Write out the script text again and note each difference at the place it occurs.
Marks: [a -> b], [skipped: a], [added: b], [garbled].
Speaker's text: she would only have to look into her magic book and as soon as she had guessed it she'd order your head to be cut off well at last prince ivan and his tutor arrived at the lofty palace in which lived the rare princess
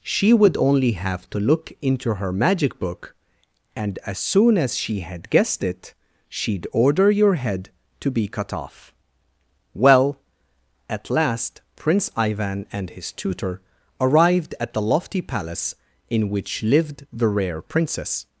she would only have to look into her magic book and as soon as she had guessed it she'd order your head to be cut off well at last prince ivan and his tutor arrived at the lofty palace in which lived the rare princess